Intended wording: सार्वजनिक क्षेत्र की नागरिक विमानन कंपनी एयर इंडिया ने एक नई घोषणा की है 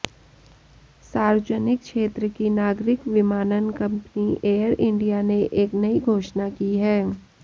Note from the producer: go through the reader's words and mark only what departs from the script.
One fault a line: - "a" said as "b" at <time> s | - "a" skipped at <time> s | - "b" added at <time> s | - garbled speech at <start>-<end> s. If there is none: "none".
none